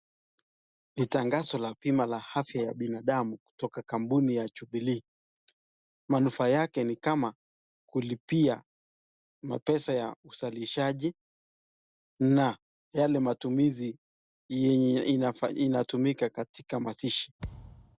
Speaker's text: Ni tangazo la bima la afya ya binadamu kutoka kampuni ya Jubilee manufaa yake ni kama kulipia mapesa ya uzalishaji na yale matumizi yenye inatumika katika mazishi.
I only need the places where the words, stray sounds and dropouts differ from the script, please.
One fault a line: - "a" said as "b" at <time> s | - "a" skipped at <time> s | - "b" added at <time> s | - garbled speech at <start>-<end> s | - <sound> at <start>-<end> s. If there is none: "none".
- thud at 17.4-18.0 s